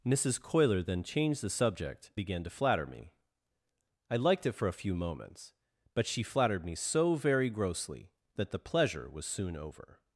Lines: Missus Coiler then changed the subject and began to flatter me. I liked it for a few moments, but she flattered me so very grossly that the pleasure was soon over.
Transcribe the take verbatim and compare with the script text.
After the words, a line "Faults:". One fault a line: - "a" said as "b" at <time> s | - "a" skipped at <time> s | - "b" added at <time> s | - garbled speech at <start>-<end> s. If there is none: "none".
Missus Coiler then changed the subject began to flatter me. I liked it for a few moments, but she flattered me so very grossly that the pleasure was soon over.
Faults:
- "and" skipped at 2.1 s